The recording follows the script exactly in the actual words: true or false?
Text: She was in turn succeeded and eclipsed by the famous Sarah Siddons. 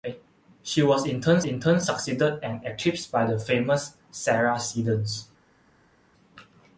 false